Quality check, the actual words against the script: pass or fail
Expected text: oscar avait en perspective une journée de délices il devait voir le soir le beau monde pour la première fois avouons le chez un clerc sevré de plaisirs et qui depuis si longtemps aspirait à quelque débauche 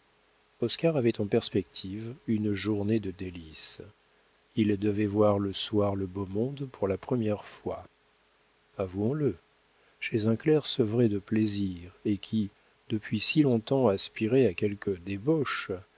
pass